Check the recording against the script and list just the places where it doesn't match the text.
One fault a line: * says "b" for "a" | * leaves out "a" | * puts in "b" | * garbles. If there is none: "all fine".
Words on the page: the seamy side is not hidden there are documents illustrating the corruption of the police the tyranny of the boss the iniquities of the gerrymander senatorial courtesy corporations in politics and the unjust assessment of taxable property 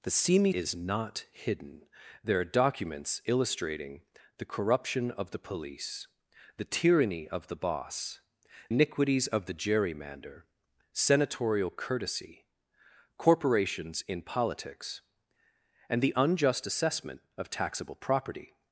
* leaves out "side"
* leaves out "the"